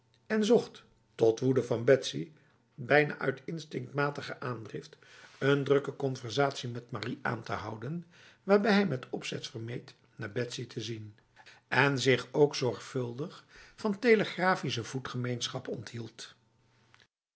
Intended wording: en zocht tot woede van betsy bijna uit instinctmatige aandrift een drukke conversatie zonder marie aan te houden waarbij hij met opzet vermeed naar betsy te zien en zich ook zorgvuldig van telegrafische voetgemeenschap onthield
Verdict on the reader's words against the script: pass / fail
fail